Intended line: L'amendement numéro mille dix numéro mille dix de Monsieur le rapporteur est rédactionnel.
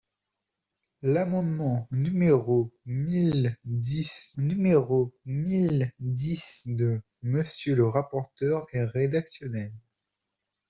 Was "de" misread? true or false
false